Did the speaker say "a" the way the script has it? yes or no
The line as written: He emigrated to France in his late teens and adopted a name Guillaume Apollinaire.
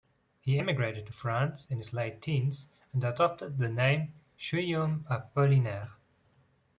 no